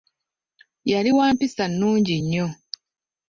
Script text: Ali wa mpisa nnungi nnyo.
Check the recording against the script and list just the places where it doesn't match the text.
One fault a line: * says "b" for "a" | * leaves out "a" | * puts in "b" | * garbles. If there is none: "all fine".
* says "Yali" for "Ali"